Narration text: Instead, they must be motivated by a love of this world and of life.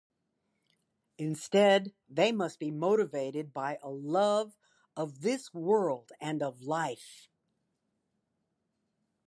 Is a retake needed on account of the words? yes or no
no